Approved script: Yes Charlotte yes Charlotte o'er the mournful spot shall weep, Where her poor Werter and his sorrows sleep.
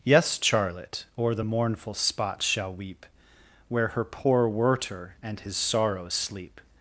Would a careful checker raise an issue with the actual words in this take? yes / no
yes